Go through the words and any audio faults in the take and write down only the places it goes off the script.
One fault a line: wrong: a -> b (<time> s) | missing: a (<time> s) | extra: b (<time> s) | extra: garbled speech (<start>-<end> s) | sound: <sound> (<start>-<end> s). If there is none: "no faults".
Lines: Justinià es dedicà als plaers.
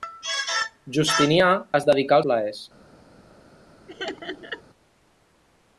missing: als (2.2 s)
sound: laugh (3.9-4.6 s)